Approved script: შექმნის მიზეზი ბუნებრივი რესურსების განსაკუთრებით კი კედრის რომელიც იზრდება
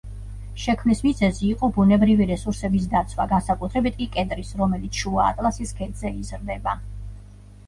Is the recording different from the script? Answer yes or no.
yes